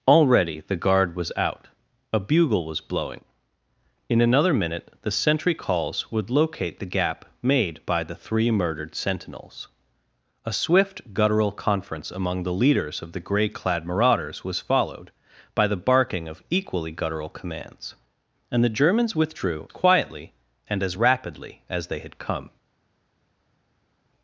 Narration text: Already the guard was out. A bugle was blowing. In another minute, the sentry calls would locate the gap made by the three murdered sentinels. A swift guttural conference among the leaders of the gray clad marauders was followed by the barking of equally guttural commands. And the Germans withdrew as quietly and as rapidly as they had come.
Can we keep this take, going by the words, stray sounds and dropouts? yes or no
no